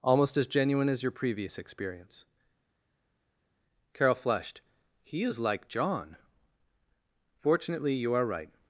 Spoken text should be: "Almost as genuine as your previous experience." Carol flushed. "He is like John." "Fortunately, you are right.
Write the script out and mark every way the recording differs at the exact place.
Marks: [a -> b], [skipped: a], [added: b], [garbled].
"Almost as genuine as your previous experience." Carol flushed. "He is like John." "Fortunately, you are right.